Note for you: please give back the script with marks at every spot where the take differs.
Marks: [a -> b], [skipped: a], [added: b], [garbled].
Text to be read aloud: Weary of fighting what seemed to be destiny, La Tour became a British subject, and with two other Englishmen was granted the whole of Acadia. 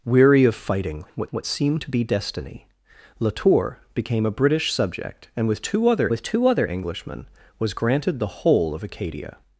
Weary of fighting what [added: what] seemed to be destiny, La Tour became a British subject, and with two other [added: with two other] Englishmen was granted the whole of Acadia.